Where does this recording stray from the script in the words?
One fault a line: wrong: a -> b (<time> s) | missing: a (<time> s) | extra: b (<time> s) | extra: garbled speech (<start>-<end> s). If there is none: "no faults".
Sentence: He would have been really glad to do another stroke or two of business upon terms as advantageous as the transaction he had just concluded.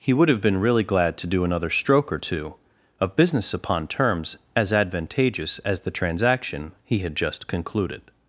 no faults